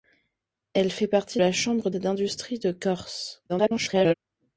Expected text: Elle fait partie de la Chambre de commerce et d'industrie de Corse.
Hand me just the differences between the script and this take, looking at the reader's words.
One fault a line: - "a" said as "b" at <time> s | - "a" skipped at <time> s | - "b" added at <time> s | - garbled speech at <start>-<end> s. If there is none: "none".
- "de" skipped at 1.4 s
- "de commerce" skipped at 1.9 s
- garbled speech at 3.5-4.1 s